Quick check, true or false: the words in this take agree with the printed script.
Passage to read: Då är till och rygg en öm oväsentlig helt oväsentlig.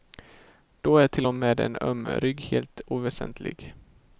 false